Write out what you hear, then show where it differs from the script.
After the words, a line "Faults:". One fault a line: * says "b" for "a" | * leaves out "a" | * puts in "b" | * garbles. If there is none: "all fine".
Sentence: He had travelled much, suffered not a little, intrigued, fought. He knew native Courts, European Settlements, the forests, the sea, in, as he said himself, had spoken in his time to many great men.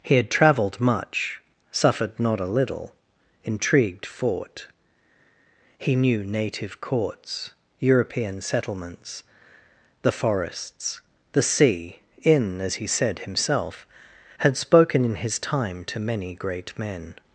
He had travelled much, suffered not a little, intrigued, fought. He knew native Courts, European Settlements, the forests, the sea, in, as he said himself, had spoken in his time to many great men.
Faults:
all fine